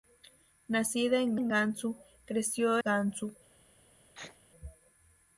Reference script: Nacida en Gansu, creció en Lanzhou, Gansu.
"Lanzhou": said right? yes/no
no